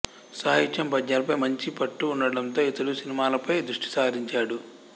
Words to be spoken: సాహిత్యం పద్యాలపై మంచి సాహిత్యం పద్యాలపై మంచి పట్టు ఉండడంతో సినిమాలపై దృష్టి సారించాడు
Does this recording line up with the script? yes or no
no